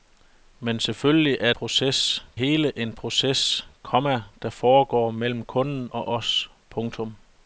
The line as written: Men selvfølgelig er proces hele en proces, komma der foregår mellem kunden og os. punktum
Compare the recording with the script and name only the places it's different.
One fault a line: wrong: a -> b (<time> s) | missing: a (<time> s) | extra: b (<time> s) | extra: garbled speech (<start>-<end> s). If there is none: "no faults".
no faults